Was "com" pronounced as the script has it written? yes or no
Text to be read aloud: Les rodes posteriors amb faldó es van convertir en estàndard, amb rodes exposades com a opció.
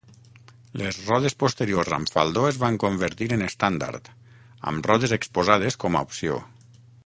yes